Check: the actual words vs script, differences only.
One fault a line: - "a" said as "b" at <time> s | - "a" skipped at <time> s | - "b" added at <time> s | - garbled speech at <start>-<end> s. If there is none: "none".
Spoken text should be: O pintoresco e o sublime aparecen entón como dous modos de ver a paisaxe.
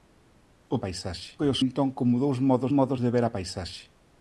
- "pintoresco" said as "paisaxe" at 0.8 s
- "sublime aparecen" skipped at 1.6 s
- "modos" added at 2.8 s